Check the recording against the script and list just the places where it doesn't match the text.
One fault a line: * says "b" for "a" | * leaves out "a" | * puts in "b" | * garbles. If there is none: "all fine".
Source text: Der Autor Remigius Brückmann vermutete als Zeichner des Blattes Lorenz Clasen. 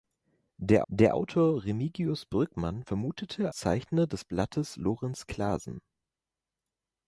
* puts in "der"
* leaves out "als"